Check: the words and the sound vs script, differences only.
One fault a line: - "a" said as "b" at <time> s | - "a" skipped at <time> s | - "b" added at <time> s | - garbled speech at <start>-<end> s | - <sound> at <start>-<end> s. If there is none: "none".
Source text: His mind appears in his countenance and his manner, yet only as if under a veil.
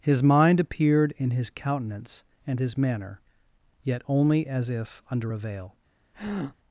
- "appears" said as "appeared" at 0.6 s
- breath at 6.1-6.6 s